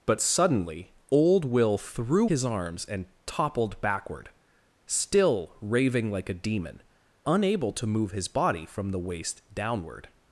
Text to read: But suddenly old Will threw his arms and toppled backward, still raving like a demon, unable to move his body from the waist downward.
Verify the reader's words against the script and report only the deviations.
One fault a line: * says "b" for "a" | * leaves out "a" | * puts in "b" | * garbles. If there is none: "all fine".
all fine